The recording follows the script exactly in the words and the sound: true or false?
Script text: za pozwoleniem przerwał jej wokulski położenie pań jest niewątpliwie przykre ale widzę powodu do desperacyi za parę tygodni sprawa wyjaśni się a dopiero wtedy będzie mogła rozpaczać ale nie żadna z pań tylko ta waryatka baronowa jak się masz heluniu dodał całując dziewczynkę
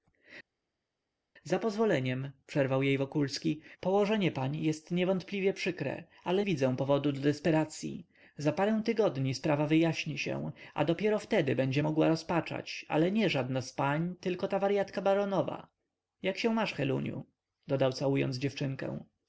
true